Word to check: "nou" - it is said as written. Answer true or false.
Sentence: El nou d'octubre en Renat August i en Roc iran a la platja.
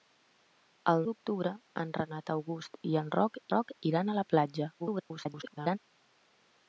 false